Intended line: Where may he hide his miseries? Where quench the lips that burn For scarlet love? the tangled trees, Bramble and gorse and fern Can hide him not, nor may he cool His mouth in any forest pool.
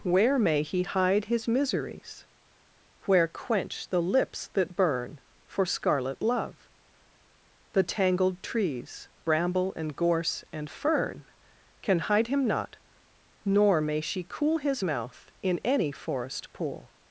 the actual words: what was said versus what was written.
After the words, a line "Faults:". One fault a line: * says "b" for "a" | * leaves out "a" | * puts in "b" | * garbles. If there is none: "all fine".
Where may he hide his miseries? Where quench the lips that burn For scarlet love? the tangled trees, Bramble and gorse and fern Can hide him not, nor may she cool His mouth in any forest pool.
Faults:
* says "she" for "he"